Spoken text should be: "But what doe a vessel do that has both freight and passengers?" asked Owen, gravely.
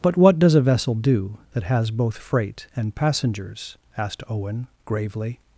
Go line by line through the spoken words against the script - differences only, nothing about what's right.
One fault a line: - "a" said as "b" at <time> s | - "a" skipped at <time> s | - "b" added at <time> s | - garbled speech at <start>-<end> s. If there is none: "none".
- "doe" said as "does" at 0.4 s